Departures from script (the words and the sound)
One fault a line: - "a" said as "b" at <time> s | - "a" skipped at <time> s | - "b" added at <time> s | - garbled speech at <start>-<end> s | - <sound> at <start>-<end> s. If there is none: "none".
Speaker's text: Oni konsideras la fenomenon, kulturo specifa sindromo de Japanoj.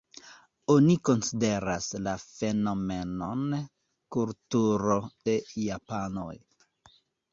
- "specifa sindromo" skipped at 5.0 s